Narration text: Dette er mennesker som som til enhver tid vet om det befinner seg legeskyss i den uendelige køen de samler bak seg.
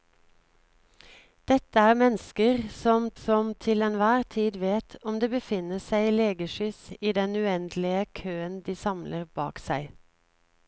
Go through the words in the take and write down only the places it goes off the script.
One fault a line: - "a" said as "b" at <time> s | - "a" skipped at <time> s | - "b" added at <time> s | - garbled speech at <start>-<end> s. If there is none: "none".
none